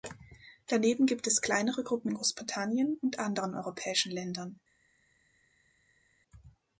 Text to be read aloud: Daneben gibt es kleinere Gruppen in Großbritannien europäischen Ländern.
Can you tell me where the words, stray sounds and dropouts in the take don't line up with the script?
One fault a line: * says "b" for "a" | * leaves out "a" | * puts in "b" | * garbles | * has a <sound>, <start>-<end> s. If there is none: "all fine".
* puts in "und anderen"